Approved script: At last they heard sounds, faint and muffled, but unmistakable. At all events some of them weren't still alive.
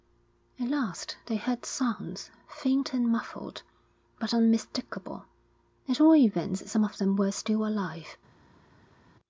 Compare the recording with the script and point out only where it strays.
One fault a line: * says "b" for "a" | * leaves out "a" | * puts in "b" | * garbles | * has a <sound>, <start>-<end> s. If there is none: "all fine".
* says "were" for "weren't"